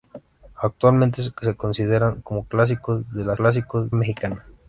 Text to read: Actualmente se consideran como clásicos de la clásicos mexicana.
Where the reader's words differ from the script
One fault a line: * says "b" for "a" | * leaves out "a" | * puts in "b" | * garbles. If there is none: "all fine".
all fine